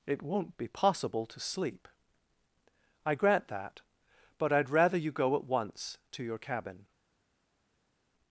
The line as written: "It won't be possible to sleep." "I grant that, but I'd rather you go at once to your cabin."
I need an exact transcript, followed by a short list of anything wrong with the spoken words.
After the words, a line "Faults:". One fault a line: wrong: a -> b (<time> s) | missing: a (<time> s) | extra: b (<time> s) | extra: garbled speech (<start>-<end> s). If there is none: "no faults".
"It won't be possible to sleep." "I grant that, but I'd rather you go at once to your cabin."
Faults:
no faults